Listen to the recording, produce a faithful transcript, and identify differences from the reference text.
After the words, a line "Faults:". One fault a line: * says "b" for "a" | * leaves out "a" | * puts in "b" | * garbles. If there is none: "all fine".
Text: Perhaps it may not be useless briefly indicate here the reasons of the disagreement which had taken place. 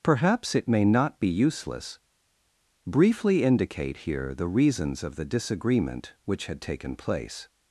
Perhaps it may not be useless briefly indicate here the reasons of the disagreement which had taken place.
Faults:
all fine